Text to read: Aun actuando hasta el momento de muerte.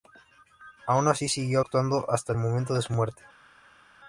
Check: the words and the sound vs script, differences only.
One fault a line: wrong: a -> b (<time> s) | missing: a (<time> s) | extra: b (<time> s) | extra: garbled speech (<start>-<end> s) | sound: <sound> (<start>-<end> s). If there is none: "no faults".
extra: así siguió (1.1 s)
extra: su (2.8 s)